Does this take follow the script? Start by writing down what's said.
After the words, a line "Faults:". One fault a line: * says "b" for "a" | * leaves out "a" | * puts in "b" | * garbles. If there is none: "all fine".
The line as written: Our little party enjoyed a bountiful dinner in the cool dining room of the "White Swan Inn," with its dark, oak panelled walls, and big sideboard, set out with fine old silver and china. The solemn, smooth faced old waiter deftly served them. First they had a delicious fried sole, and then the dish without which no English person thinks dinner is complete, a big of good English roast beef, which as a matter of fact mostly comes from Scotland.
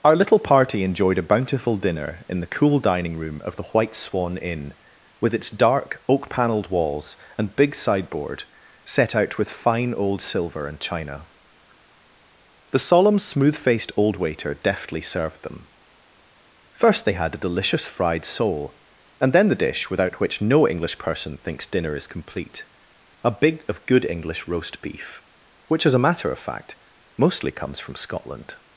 Our little party enjoyed a bountiful dinner in the cool dining room of the "White Swan Inn," with its dark, oak panelled walls, and big sideboard, set out with fine old silver and china. The solemn, smooth faced old waiter deftly served them. First they had a delicious fried sole, and then the dish without which no English person thinks dinner is complete, a big of good English roast beef, which as a matter of fact mostly comes from Scotland.
Faults:
all fine